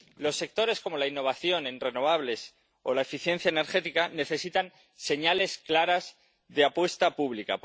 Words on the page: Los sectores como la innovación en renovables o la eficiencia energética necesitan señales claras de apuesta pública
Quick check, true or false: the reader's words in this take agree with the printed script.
true